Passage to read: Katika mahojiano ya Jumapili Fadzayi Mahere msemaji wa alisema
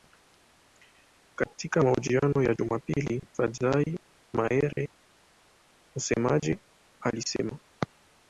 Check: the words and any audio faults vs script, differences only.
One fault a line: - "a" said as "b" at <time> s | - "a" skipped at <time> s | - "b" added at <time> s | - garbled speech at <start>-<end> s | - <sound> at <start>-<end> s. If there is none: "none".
- dropout at 4.7-4.8 s
- "wa" skipped at 6.6 s